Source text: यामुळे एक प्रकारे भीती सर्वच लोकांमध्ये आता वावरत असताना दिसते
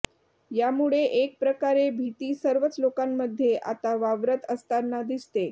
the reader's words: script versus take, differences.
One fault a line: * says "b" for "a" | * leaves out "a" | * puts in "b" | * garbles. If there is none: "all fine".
all fine